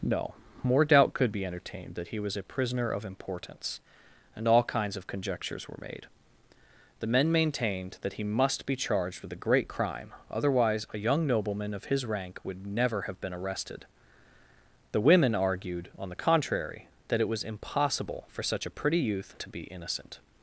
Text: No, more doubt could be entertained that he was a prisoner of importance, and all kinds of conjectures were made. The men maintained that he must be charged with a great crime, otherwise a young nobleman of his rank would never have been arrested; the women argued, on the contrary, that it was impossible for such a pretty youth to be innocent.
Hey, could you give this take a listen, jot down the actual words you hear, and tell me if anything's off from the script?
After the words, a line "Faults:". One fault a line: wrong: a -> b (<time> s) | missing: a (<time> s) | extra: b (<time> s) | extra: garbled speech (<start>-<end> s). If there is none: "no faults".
No, more doubt could be entertained that he was a prisoner of importance, and all kinds of conjectures were made. The men maintained that he must be charged with a great crime, otherwise a young nobleman of his rank would never have been arrested; the women argued, on the contrary, that it was impossible for such a pretty youth to be innocent.
Faults:
no faults